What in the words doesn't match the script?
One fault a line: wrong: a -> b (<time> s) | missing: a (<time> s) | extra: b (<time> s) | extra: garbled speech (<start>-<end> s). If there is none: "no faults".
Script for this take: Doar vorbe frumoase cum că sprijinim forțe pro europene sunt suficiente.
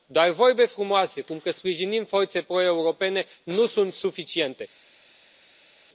extra: nu (3.4 s)